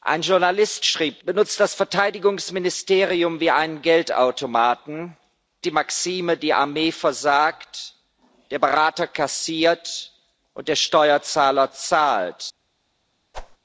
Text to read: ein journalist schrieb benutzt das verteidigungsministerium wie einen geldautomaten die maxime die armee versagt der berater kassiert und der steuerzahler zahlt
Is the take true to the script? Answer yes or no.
yes